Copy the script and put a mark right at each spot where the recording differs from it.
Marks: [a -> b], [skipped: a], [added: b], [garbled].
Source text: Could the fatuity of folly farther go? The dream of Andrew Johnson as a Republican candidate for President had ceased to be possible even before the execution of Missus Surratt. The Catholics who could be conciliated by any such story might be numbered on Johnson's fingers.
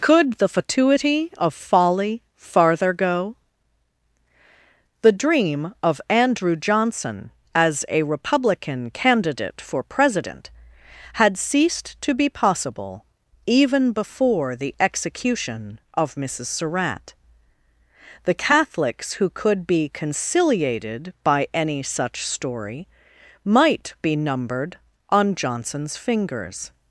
Could the fatuity of folly farther go? The dream of Andrew Johnson as a Republican candidate for President had ceased to be possible even before the execution of Missus Surratt. The Catholics who could be conciliated by any such story might be numbered on Johnson's fingers.